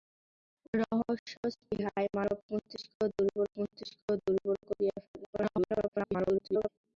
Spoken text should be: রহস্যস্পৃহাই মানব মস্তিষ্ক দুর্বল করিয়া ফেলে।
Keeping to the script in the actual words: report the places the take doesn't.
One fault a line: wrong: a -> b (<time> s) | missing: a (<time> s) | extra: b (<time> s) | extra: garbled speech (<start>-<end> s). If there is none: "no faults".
extra: মস্তিষ্ক দুর্বল (3.6 s)
extra: garbled speech (5.3-6.7 s)